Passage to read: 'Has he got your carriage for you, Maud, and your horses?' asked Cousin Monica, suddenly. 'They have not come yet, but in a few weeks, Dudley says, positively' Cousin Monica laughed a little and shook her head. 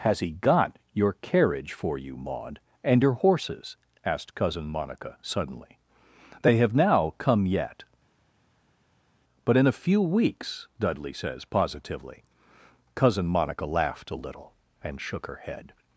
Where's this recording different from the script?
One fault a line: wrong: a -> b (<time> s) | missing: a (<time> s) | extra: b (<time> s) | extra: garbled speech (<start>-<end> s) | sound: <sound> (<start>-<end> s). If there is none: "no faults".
wrong: not -> now (6.7 s)